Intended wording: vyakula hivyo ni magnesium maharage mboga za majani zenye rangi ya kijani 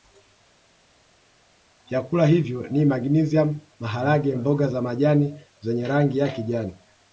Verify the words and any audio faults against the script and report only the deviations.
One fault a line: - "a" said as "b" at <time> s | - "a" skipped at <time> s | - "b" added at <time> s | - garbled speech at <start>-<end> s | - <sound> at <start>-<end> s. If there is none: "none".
none